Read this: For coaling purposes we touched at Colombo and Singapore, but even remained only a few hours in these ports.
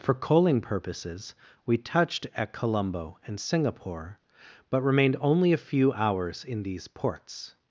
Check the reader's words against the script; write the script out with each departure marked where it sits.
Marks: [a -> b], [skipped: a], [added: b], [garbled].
For coaling purposes we touched at Colombo and Singapore, but [skipped: even] remained only a few hours in these ports.